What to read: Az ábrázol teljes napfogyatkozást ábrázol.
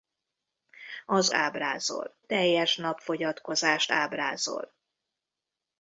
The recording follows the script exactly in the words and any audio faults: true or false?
true